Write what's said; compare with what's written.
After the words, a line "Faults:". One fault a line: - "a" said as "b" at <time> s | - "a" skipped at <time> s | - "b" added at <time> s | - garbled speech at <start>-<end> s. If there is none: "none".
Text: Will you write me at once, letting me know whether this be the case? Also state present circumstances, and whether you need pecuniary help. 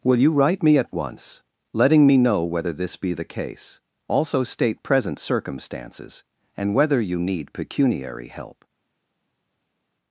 Will you write me at once, letting me know whether this be the case? Also state present circumstances, and whether you need pecuniary help.
Faults:
none